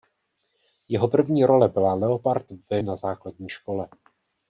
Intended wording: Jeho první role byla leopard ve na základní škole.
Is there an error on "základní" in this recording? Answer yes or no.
no